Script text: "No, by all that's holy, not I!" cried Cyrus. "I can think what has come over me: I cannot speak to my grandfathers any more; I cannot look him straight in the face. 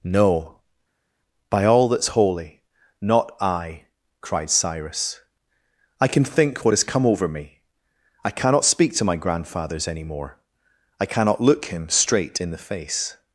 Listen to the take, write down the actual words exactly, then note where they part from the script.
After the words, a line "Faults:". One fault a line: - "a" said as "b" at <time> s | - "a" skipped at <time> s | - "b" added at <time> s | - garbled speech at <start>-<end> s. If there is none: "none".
"No, by all that's holy, not I!" cried Cyrus. "I can think what has come over me: I cannot speak to my grandfathers any more; I cannot look him straight in the face.
Faults:
none